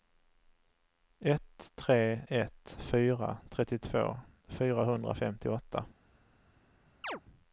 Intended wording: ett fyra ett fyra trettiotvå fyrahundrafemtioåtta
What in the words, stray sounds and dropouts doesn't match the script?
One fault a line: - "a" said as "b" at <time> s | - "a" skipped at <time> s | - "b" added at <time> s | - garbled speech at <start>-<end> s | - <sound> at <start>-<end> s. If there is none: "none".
- "fyra" said as "tre" at 1.8 s
- chirp at 7.0-7.2 s